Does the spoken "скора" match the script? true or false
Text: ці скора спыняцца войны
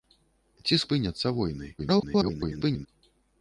false